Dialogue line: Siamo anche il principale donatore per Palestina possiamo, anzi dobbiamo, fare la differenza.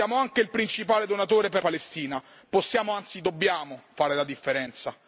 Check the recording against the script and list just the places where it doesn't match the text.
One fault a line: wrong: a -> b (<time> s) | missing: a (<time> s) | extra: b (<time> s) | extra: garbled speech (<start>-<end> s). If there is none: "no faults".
no faults